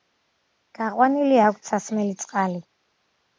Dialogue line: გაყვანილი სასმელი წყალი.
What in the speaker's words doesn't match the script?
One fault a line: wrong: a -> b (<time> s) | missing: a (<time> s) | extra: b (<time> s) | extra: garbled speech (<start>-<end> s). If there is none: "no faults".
extra: აქვთ (1.5 s)